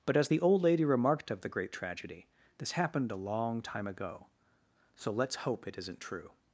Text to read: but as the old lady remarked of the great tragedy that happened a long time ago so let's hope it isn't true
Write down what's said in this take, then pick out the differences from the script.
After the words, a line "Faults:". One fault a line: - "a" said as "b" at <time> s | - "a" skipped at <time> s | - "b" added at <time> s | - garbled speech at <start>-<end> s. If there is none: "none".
but as the old lady remarked of the great tragedy this happened a long time ago so let's hope it isn't true
Faults:
- "that" said as "this" at 2.6 s